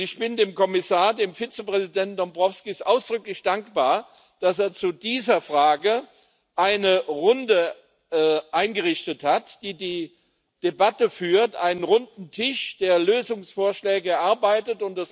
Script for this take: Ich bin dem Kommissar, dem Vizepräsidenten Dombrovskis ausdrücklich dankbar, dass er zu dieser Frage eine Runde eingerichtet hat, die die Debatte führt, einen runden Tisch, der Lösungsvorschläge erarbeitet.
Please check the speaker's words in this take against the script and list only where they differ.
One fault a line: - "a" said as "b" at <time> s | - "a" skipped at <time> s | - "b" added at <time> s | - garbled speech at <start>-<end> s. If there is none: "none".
none